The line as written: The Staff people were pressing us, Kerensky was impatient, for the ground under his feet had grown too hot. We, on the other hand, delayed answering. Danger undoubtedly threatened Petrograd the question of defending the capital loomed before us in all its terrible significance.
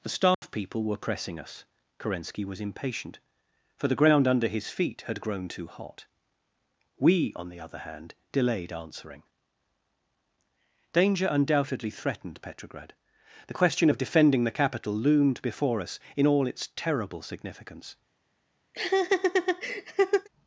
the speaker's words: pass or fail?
pass